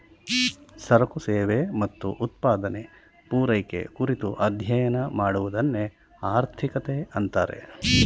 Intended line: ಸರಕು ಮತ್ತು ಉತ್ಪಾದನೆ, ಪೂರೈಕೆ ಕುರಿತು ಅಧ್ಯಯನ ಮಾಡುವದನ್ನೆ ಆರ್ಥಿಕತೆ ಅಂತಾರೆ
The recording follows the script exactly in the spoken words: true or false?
false